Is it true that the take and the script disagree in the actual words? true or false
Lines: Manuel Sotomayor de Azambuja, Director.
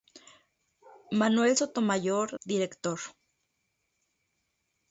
true